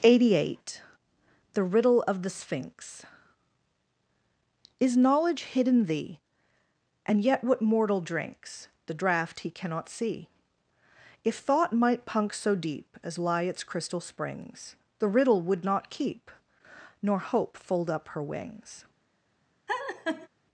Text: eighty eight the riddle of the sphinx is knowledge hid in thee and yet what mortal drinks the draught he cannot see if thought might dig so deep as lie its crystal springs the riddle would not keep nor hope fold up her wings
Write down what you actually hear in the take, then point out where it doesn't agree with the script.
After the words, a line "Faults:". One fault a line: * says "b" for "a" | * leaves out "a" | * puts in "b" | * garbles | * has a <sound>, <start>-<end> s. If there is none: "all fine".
eighty eight the riddle of the sphinx is knowledge hid in thee and yet what mortal drinks the draught he cannot see if thought might punk so deep as lie its crystal springs the riddle would not keep nor hope fold up her wings
Faults:
* says "punk" for "dig"
* has a laugh, 19.7-20.3 s